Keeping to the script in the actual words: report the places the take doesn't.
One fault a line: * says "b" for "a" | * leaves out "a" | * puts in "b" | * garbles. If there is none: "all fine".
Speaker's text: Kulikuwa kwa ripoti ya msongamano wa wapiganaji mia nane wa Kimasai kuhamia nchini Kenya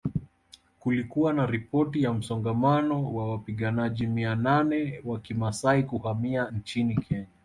* says "na" for "kwa"